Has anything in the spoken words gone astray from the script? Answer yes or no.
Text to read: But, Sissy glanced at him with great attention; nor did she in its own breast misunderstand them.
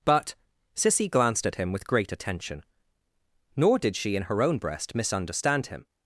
yes